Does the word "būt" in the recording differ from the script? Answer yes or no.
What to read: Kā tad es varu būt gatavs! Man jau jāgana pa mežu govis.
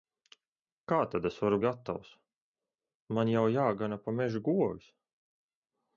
yes